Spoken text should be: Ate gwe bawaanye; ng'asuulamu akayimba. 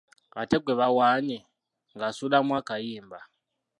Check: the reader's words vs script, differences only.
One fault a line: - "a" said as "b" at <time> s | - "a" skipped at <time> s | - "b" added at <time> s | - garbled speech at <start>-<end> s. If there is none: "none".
none